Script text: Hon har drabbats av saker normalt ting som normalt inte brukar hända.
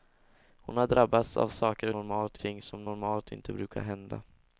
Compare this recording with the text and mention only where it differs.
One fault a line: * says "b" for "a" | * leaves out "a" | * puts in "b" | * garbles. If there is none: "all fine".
all fine